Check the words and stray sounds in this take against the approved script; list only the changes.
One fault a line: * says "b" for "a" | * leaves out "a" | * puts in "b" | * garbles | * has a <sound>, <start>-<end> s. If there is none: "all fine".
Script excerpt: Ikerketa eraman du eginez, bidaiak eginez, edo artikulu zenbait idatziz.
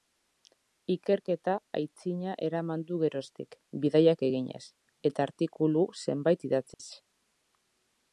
* puts in "aitzina"
* says "geroztik" for "eginez"
* says "eta" for "edo"
* has a dropout, 6.7-6.8 s